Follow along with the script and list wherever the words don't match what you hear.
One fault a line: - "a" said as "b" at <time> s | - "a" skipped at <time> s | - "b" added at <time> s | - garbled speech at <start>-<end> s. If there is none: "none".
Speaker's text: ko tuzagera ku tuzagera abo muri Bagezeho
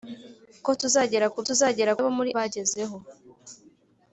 none